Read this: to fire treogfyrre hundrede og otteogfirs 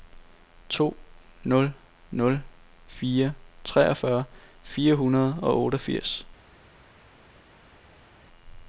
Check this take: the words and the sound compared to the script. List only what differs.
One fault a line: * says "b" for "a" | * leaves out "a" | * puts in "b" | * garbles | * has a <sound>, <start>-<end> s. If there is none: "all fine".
* puts in "nul nul"
* puts in "fire"